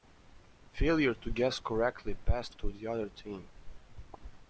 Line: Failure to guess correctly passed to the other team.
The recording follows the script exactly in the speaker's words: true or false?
true